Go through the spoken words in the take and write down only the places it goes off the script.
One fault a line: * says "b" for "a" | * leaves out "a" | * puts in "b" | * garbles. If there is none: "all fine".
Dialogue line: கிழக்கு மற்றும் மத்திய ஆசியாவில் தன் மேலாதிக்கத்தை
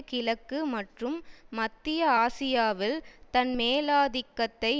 all fine